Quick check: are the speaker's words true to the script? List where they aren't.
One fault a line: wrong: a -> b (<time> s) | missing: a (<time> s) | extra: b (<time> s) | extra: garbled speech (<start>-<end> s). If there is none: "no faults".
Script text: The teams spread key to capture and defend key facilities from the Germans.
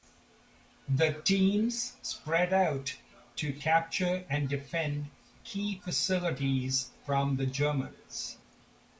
wrong: key -> out (2.5 s)